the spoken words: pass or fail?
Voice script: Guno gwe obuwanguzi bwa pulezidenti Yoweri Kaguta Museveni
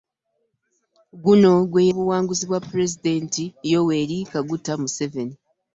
pass